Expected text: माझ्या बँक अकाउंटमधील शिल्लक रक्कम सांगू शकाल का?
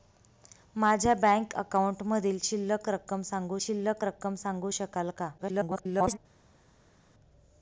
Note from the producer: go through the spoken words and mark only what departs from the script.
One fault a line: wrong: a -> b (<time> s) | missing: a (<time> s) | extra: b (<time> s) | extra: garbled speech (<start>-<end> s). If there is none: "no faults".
extra: शिल्लक रक्कम सांगू (3.6 s)
extra: garbled speech (5.4-6.2 s)